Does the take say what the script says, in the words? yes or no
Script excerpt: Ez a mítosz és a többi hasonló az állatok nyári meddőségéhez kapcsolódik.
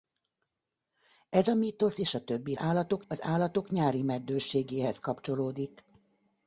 no